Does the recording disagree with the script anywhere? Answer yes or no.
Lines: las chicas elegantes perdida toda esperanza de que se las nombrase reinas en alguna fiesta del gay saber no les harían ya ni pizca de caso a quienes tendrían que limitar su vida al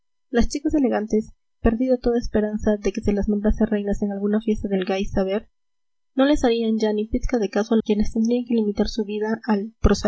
no